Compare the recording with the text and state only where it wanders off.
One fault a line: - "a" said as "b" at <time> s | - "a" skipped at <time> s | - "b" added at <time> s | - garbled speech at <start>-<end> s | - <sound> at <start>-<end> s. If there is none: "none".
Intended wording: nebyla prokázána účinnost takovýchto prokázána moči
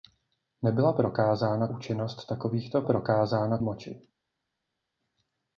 none